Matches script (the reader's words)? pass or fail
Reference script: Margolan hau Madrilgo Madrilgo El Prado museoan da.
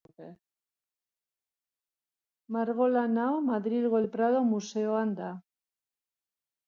fail